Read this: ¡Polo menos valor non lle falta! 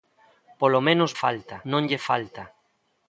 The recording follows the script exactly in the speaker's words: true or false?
false